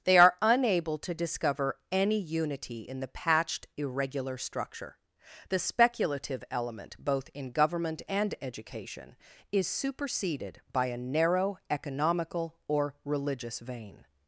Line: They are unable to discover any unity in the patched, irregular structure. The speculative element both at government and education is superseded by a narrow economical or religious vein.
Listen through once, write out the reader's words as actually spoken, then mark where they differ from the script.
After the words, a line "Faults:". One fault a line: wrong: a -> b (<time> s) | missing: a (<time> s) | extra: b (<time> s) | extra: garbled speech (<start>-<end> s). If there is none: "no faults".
They are unable to discover any unity in the patched, irregular structure. The speculative element both in government and education is superseded by a narrow economical or religious vein.
Faults:
wrong: at -> in (7.3 s)